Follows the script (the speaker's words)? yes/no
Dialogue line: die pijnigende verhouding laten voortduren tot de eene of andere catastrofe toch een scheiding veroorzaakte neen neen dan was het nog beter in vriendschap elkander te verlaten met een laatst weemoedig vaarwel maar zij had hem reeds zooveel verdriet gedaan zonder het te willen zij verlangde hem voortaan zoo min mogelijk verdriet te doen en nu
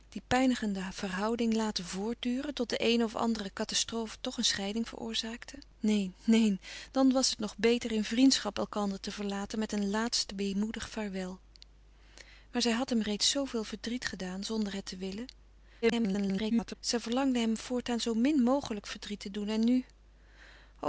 no